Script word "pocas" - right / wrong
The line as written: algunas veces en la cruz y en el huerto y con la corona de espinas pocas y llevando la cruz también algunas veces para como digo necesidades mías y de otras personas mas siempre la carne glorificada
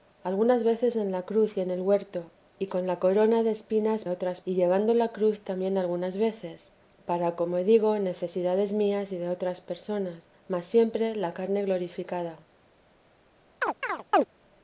wrong